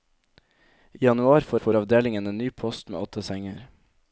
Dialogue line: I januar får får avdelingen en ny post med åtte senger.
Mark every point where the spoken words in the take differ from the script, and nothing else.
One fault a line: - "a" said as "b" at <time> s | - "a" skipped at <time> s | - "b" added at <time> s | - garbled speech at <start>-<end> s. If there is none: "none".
none